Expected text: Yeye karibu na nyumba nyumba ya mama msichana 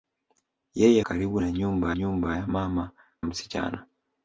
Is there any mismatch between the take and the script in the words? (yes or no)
no